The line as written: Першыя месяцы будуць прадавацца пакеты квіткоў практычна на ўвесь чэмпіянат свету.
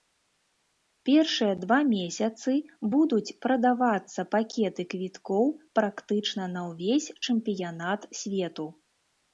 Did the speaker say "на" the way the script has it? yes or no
yes